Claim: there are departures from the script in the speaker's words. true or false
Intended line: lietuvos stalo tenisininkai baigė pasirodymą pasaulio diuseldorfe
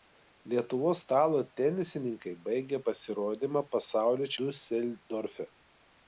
false